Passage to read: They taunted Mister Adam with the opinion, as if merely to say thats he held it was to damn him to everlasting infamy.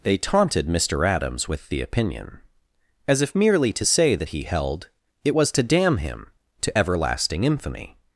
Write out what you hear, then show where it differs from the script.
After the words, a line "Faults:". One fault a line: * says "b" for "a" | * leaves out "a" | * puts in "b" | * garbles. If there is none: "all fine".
They taunted Mister Adams with the opinion, as if merely to say that he held it was to damn him to everlasting infamy.
Faults:
* says "Adams" for "Adam"
* says "that" for "thats"